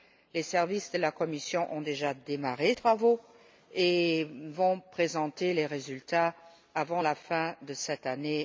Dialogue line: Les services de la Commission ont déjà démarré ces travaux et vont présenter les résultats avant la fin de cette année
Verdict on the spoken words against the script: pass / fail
fail